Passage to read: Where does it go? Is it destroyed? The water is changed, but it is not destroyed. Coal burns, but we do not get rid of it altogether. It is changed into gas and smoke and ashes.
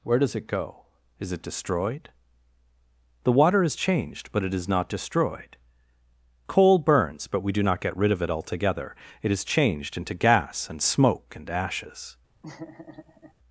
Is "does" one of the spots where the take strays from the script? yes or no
no